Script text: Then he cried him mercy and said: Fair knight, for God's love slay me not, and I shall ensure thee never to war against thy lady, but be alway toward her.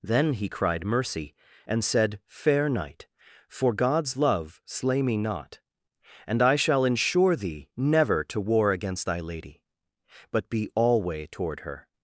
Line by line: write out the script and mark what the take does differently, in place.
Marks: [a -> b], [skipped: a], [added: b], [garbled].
Then he cried [skipped: him] mercy and said: Fair knight, for God's love slay me not, and I shall ensure thee never to war against thy lady, but be alway toward her.